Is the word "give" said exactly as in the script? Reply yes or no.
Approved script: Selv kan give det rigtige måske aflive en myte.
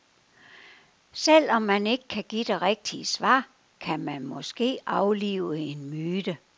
yes